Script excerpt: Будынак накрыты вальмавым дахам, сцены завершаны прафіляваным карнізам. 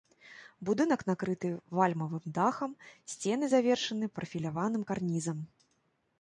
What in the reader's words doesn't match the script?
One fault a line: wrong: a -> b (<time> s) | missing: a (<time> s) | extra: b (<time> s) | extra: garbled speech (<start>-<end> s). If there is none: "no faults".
no faults